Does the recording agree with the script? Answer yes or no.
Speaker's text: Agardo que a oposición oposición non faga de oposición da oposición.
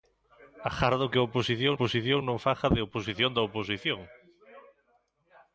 yes